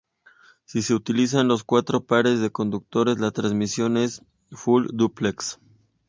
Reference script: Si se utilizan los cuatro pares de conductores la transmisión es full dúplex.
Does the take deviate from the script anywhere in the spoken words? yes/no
no